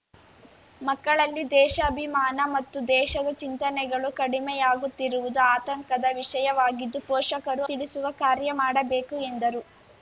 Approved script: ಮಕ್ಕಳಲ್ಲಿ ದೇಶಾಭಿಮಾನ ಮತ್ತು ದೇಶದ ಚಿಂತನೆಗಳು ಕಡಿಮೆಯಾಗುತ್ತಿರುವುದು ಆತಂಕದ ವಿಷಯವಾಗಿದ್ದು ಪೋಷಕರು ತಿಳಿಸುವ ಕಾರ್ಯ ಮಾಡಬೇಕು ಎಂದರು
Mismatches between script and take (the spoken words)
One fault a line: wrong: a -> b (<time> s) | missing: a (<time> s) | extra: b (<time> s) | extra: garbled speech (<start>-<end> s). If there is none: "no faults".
no faults